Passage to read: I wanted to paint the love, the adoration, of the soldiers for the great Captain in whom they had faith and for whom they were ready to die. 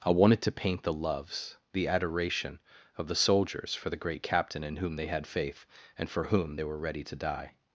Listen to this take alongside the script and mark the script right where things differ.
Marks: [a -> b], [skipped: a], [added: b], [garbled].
I wanted to paint the [love, -> loves] the adoration, of the soldiers for the great Captain in whom they had faith and for whom they were ready to die.